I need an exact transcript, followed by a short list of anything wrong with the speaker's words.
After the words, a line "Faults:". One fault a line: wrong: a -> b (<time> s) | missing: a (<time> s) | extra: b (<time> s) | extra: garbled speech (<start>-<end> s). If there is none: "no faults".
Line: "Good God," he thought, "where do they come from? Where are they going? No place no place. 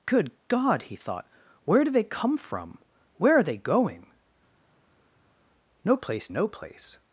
"Good God," he thought, "where do they come from? Where are they going? No place no place.
Faults:
no faults